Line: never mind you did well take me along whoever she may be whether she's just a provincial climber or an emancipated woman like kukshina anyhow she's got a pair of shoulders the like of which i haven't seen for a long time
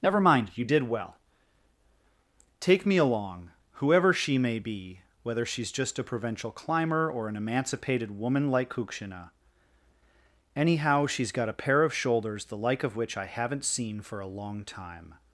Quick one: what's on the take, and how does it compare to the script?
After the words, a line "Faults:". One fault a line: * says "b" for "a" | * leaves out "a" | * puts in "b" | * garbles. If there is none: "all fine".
never mind you did well take me along whoever she may be whether she's just a provincial climber or an emancipated woman like kukshina anyhow she's got a pair of shoulders the like of which i haven't seen for a long time
Faults:
all fine